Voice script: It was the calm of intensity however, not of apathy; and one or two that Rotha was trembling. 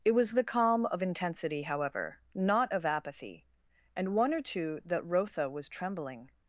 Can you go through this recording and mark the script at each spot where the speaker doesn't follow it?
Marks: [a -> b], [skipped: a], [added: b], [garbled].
It was the calm of intensity however, not of apathy; and one or two that Rotha was trembling.